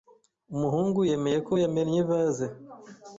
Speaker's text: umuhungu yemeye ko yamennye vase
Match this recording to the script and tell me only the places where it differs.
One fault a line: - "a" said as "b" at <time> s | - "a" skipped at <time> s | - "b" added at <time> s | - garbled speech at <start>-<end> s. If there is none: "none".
none